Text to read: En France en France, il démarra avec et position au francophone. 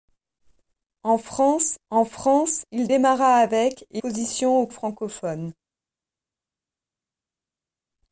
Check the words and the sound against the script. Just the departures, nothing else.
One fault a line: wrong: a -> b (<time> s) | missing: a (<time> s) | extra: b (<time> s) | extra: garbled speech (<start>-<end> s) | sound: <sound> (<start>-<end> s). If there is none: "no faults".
no faults